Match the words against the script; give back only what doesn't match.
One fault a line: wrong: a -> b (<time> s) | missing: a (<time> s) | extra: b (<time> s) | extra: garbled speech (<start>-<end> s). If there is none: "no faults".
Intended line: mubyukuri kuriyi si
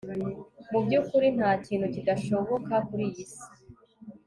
extra: ntakintu kidashoboka (1.4 s)